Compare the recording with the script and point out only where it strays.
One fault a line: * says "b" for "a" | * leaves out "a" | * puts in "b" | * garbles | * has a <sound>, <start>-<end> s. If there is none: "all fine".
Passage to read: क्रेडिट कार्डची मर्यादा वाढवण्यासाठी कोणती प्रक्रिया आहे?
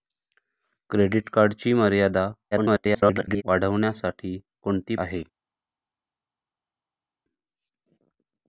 * garbles
* leaves out "प्रक्रिया"